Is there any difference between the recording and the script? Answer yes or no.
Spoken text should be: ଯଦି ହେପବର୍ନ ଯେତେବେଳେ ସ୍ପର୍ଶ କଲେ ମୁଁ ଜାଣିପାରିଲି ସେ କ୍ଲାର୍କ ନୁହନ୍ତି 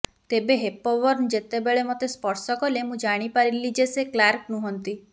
yes